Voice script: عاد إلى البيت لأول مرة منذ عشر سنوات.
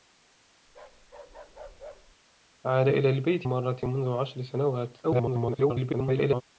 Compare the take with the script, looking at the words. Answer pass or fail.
fail